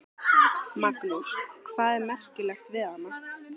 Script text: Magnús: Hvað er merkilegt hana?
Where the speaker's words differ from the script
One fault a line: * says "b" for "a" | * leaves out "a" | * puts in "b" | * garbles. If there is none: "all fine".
* puts in "við"